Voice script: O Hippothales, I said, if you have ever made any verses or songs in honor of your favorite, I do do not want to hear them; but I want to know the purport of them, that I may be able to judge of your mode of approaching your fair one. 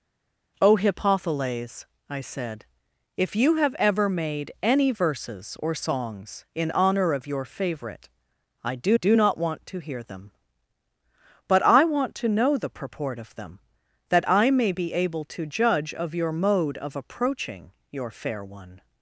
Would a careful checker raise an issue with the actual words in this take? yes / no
no